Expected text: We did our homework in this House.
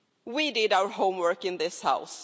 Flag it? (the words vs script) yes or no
no